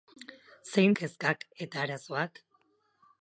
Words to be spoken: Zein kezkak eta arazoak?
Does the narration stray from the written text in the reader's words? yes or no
no